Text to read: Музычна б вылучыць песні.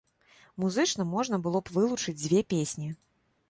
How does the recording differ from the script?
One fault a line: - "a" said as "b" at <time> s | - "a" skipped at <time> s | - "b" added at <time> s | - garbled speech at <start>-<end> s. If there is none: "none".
- "можна было" added at 1.1 s
- "дзве" added at 2.2 s